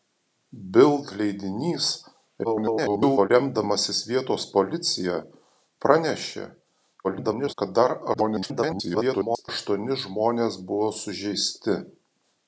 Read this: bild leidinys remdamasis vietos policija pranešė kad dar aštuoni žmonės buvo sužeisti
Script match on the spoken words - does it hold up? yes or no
no